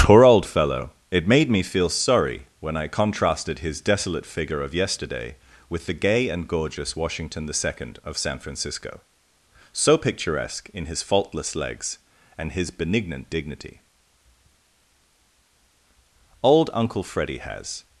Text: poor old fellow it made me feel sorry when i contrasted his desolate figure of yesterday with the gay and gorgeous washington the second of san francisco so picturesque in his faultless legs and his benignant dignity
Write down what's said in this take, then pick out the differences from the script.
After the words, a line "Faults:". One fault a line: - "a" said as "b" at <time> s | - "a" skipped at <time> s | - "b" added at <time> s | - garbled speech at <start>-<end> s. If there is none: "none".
poor old fellow it made me feel sorry when i contrasted his desolate figure of yesterday with the gay and gorgeous washington the second of san francisco so picturesque in his faultless legs and his benignant dignity old uncle freddy has
Faults:
- "old uncle freddy has" added at 16.4 s